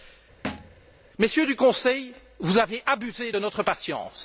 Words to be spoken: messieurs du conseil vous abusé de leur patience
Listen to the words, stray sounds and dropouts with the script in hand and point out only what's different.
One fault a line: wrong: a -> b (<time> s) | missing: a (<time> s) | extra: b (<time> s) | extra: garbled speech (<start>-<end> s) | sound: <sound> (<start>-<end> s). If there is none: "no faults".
sound: thud (0.4-0.8 s)
extra: avez (2.6 s)
wrong: leur -> notre (3.4 s)